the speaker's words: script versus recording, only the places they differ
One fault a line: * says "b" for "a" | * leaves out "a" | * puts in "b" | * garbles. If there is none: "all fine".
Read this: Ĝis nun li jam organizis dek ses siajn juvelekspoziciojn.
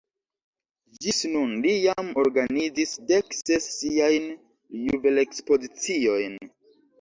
all fine